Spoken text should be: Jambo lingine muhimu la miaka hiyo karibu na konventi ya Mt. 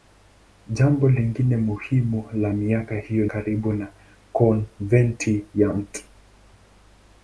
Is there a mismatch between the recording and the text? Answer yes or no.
no